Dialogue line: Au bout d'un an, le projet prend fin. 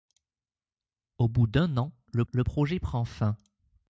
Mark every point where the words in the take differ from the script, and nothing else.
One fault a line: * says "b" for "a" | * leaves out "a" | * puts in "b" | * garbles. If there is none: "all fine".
* puts in "le"